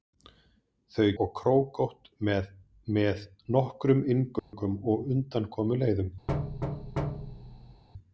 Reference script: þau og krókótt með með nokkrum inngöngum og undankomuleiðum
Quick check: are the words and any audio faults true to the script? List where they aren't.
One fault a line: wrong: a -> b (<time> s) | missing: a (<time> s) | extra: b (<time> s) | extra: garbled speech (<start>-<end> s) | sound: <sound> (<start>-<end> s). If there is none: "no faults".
sound: dropout (4.4-4.5 s)
sound: thud (6.3-7.8 s)